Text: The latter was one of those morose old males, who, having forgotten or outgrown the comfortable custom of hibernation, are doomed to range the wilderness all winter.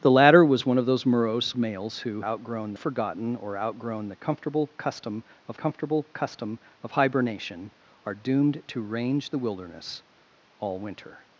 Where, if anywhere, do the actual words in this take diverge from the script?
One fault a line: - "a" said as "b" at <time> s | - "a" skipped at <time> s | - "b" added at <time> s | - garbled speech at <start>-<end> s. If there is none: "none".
- "old" skipped at 1.6 s
- "having" said as "outgrown" at 2.2 s
- "comfortable custom of" added at 5.5 s